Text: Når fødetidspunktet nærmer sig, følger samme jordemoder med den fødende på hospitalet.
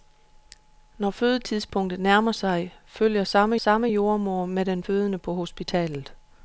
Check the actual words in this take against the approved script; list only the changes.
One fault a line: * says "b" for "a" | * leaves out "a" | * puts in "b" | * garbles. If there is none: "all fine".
* puts in "samme"